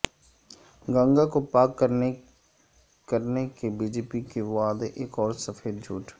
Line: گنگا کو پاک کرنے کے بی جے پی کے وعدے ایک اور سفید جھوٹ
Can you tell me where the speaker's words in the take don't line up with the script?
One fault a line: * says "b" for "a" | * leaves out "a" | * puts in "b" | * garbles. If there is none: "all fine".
all fine